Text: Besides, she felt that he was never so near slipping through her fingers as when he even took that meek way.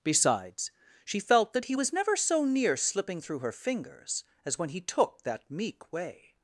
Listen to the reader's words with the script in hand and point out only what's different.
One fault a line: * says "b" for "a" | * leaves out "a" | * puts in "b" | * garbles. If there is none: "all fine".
* leaves out "even"